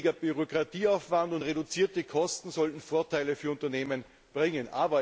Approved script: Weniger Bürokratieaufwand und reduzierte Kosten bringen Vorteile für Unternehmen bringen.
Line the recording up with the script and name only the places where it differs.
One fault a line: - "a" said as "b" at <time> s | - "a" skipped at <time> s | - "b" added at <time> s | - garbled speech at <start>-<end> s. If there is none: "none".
- "bringen" said as "sollten" at 2.5 s